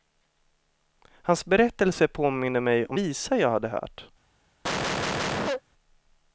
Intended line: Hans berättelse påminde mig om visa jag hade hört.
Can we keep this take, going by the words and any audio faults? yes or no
no